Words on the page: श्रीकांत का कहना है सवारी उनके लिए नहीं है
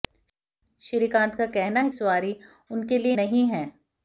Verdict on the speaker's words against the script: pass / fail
pass